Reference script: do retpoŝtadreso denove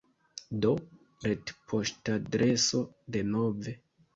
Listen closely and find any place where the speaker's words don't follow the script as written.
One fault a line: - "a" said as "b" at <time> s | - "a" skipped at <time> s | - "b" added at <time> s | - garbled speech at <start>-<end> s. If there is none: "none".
none